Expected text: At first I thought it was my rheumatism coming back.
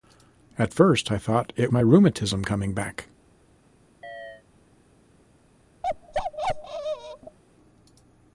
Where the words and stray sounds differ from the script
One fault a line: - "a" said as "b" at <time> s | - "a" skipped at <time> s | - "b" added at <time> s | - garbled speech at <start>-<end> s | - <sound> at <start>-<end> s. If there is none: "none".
- "was" skipped at 1.7 s
- chirp at 4.0-4.4 s
- bark at 5.8-7.4 s